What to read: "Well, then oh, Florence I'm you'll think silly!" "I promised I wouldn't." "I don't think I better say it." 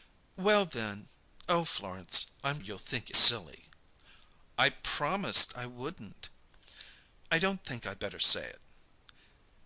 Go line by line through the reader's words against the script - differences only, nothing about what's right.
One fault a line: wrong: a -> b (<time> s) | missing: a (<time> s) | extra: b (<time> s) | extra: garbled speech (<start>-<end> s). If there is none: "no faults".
no faults